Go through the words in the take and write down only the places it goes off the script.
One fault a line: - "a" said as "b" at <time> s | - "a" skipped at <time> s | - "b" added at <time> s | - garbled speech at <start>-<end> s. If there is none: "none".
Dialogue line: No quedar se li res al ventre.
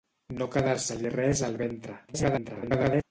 - garbled speech at 2.1-3.0 s